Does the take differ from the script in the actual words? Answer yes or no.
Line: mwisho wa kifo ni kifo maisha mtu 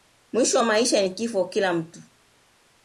yes